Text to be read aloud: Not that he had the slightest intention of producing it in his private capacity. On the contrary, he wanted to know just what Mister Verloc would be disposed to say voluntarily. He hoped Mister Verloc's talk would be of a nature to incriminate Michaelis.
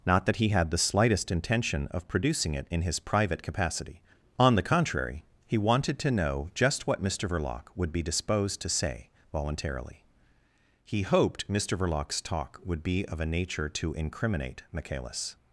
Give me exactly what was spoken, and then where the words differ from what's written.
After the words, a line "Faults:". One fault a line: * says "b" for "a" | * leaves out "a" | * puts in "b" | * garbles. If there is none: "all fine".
Not that he had the slightest intention of producing it in his private capacity. On the contrary, he wanted to know just what Mister Verloc would be disposed to say voluntarily. He hoped Mister Verloc's talk would be of a nature to incriminate Michaelis.
Faults:
all fine